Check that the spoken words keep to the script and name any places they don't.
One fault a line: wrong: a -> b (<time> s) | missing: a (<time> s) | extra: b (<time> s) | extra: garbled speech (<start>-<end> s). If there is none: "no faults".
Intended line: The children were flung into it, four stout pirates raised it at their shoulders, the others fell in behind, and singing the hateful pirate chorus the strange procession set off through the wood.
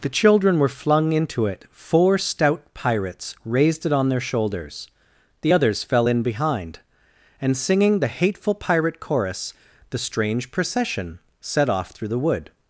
wrong: at -> on (3.9 s)